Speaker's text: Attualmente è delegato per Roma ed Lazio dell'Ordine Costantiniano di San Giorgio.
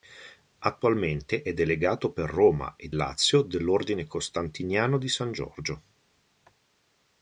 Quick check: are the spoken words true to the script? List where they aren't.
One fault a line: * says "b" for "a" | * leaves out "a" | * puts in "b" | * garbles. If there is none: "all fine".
all fine